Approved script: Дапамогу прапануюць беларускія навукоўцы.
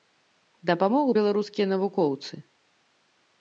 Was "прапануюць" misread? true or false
true